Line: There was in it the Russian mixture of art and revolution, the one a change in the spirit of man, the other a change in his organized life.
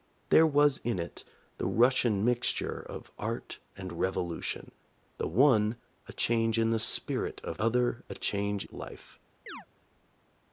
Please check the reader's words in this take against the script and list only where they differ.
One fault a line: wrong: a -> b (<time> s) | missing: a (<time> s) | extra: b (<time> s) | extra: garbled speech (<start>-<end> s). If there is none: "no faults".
missing: man the (7.6 s)
missing: in his organized (8.6 s)